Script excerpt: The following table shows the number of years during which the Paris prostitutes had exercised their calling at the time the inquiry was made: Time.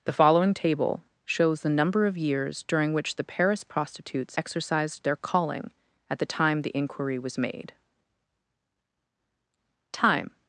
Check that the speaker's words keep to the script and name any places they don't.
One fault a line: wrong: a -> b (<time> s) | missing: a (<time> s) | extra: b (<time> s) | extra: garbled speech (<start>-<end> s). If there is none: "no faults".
missing: had (4.4 s)